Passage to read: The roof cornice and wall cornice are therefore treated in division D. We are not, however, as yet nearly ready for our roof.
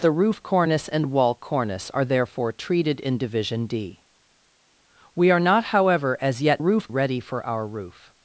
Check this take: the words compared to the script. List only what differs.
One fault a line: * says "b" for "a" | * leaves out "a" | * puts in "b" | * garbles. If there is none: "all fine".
* says "roof" for "nearly"